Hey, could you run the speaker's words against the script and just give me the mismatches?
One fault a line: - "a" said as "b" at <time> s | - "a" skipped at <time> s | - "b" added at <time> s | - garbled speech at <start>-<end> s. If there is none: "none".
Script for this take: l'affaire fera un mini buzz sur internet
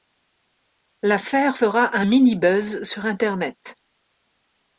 none